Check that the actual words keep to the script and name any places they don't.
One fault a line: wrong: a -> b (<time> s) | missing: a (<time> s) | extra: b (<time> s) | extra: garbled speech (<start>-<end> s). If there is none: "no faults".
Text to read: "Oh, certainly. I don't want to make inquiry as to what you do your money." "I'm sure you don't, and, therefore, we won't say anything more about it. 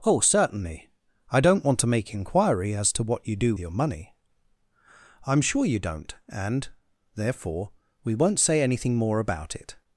no faults